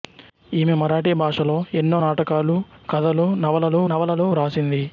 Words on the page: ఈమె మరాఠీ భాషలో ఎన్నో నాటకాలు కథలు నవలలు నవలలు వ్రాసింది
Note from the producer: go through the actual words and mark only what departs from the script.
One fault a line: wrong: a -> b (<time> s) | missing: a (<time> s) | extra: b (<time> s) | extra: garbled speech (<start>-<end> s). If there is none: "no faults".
no faults